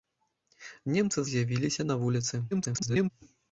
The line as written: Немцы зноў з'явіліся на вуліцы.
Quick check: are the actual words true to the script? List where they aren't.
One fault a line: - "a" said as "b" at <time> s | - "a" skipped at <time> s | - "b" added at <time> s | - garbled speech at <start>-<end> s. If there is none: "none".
- "зноў" skipped at 1.2 s
- garbled speech at 2.5-3.1 s